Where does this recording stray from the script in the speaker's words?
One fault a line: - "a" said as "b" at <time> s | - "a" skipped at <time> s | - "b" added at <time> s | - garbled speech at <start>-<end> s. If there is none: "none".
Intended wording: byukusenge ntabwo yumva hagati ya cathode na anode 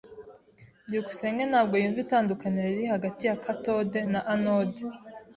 - "itandukaniro riri" added at 2.0 s